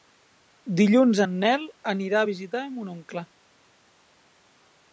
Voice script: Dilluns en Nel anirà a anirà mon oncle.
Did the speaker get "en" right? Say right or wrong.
right